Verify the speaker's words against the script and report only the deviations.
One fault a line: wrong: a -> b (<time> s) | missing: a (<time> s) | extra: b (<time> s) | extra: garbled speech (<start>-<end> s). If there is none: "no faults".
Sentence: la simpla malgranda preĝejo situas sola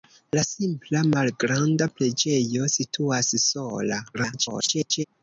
extra: garbled speech (4.1-5.0 s)